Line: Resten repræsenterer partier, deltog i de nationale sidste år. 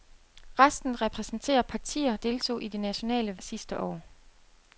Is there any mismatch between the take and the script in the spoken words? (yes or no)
no